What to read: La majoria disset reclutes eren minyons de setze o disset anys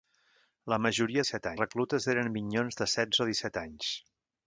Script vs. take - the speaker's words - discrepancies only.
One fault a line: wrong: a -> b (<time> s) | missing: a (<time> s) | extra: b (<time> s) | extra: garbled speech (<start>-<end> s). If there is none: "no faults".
no faults